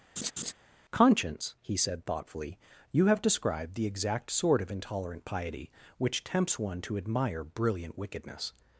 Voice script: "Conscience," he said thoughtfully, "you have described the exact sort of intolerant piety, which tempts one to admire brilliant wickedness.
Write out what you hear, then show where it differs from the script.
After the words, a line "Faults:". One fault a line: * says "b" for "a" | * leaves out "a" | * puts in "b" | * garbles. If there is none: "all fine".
"Conscience," he said thoughtfully, "you have described the exact sort of intolerant piety, which tempts one to admire brilliant wickedness.
Faults:
all fine